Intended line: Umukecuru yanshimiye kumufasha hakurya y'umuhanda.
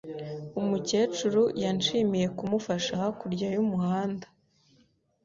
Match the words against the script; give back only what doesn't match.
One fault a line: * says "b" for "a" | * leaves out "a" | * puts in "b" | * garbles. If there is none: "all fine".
all fine